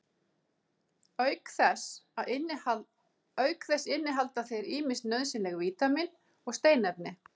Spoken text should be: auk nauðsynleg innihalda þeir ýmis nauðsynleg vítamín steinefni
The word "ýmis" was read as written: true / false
true